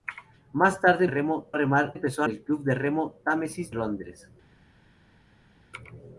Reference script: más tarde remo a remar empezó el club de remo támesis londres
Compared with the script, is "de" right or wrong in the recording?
right